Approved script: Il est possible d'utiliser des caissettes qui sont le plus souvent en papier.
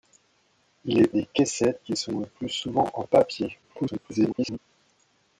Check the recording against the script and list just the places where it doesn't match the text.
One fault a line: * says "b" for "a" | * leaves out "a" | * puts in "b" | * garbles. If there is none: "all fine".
* leaves out "possible d'utiliser"
* garbles